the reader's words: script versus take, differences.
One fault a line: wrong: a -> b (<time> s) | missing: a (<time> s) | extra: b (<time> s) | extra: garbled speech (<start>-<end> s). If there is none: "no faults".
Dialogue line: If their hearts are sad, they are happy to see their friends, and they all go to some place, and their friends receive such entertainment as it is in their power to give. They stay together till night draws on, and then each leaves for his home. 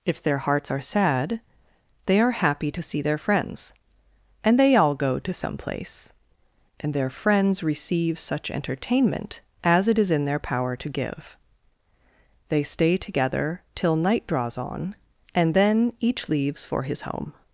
no faults